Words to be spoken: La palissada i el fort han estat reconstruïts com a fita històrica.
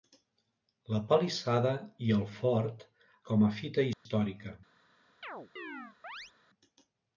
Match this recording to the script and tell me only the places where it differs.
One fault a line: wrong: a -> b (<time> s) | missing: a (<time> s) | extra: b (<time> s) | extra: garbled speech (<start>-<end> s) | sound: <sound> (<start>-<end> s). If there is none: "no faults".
missing: han estat reconstruïts (2.9 s)
sound: dropout (3.9-4.1 s)
sound: chirp (5.2-6.3 s)